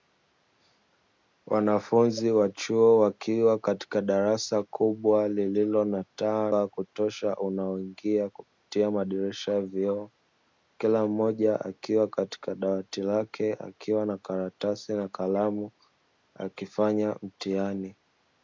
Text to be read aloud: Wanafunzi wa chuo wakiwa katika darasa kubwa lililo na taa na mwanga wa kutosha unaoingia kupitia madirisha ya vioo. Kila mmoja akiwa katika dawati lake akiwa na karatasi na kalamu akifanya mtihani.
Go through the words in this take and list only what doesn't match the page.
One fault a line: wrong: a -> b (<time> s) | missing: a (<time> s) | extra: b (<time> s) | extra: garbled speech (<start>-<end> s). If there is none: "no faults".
missing: na mwanga (6.5 s)